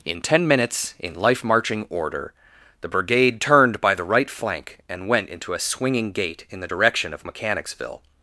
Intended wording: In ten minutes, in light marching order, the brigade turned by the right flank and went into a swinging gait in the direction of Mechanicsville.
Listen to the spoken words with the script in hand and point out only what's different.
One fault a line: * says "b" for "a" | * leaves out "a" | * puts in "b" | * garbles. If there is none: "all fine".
* says "life" for "light"